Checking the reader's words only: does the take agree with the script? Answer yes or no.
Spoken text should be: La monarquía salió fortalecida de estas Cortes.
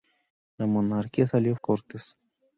no